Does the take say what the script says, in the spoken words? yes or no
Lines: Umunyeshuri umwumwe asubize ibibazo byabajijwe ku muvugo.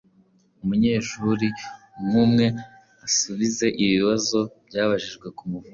yes